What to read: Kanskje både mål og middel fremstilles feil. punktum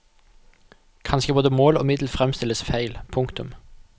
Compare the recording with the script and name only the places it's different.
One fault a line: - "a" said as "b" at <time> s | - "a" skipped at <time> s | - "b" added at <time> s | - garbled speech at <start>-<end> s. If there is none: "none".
none